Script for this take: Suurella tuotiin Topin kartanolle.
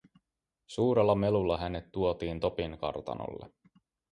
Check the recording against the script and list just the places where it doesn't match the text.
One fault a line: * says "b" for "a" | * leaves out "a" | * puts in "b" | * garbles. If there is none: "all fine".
* puts in "melulla hänet"